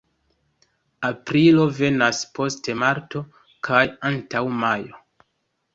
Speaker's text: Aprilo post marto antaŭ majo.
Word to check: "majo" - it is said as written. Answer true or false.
true